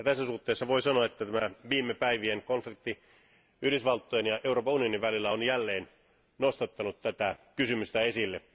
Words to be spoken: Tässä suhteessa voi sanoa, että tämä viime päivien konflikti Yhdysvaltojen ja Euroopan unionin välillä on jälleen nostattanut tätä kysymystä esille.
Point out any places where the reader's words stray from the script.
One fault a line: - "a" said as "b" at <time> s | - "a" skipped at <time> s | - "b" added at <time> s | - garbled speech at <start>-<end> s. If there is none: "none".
none